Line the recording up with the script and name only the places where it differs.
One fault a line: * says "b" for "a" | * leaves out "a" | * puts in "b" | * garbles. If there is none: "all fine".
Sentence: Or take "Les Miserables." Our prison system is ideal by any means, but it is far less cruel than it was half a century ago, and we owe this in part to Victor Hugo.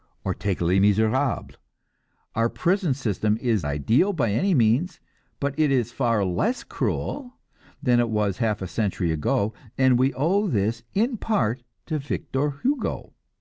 all fine